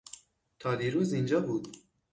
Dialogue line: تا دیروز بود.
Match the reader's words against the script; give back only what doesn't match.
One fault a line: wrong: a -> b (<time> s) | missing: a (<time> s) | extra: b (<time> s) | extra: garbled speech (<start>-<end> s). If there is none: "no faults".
extra: اینجا (1.1 s)